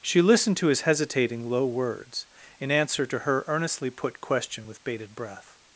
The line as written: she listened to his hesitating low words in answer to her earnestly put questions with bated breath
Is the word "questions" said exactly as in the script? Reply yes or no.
no